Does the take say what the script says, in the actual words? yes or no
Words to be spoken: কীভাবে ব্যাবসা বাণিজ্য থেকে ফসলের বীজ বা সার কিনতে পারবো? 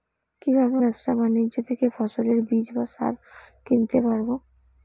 yes